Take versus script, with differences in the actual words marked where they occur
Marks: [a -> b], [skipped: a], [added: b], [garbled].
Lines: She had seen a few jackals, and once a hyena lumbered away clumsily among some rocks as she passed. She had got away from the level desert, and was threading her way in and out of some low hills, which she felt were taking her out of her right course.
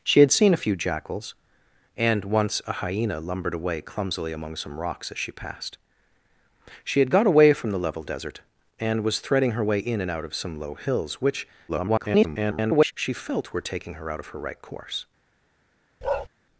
She had seen a few jackals, and once a hyena lumbered away clumsily among some rocks as she passed. She had got away from the level desert, and was threading her way in and out of some low hills, which [garbled] she felt were taking her out of her right course.